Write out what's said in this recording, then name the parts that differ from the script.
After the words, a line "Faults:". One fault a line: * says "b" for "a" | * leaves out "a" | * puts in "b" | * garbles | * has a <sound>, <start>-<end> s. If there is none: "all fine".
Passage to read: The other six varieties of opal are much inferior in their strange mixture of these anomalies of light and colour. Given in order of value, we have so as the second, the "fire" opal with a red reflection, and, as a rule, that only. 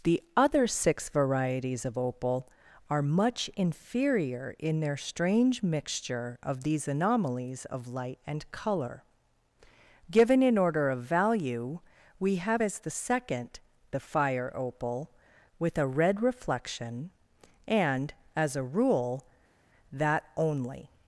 The other six varieties of opal are much inferior in their strange mixture of these anomalies of light and colour. Given in order of value, we have as the second, the "fire" opal with a red reflection, and, as a rule, that only.
Faults:
* leaves out "so"